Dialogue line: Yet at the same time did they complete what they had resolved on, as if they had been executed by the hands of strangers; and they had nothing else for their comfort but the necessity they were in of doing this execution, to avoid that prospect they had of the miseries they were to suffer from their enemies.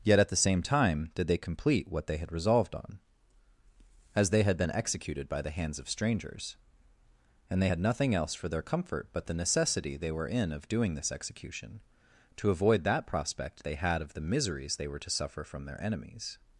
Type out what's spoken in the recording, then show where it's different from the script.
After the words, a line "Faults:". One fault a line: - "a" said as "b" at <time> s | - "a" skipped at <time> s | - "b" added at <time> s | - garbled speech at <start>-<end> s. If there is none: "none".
Yet at the same time did they complete what they had resolved on, as they had been executed by the hands of strangers; and they had nothing else for their comfort but the necessity they were in of doing this execution, to avoid that prospect they had of the miseries they were to suffer from their enemies.
Faults:
- "if" skipped at 4.3 s